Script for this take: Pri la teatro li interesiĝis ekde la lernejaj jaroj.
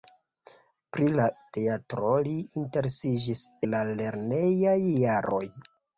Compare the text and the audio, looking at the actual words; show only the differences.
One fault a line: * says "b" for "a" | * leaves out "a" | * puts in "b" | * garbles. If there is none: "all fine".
* leaves out "ekde"